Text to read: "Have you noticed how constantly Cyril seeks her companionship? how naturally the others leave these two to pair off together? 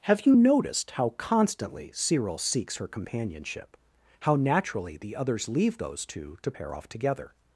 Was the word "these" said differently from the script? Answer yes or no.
yes